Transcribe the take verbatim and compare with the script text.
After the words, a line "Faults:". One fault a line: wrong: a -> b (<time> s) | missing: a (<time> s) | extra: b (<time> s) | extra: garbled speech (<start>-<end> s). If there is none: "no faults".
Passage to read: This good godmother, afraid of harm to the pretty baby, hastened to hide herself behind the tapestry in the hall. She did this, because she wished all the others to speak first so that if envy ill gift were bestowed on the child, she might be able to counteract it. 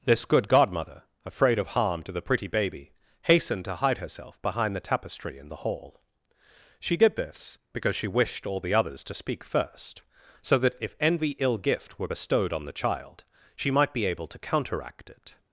This good godmother, afraid of harm to the pretty baby, hastened to hide herself behind the tapestry in the hall. She did this, because she wished all the others to speak first so that if envy ill gift were bestowed on the child, she might be able to counteract it.
Faults:
no faults